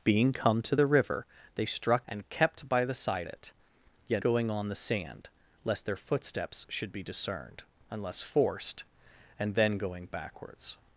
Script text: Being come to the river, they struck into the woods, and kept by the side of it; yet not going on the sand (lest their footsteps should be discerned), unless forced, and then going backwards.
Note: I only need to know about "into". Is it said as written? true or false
false